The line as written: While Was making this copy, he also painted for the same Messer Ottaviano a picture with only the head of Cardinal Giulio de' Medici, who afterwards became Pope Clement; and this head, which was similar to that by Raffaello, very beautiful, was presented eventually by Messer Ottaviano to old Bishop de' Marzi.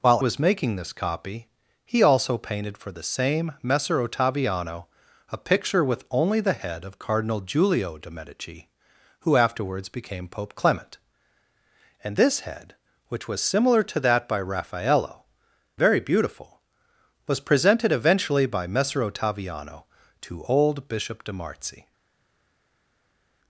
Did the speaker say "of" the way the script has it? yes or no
yes